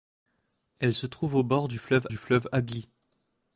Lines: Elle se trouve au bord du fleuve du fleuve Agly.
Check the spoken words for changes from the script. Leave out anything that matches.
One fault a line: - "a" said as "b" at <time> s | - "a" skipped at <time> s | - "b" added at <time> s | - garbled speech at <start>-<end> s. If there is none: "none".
none